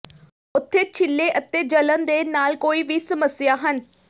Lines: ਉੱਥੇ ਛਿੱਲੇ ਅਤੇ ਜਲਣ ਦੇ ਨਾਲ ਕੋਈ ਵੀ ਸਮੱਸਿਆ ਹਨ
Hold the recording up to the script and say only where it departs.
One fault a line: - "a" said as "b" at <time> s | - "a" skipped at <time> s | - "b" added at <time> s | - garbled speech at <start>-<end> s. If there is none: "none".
none